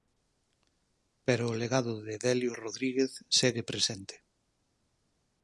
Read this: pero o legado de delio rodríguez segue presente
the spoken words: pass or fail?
pass